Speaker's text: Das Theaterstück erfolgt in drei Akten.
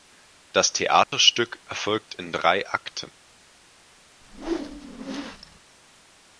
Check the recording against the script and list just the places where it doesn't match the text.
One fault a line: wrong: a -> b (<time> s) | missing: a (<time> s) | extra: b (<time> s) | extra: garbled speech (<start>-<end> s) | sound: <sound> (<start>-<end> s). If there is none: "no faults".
sound: dropout (1.0-1.1 s)
sound: whoosh (4.2-5.6 s)